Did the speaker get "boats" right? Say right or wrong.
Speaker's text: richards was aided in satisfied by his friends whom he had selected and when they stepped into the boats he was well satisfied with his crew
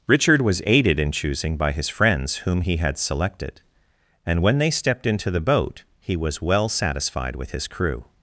wrong